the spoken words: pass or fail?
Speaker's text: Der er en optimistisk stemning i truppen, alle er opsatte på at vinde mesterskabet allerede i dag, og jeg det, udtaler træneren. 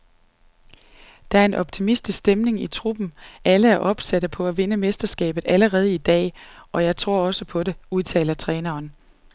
fail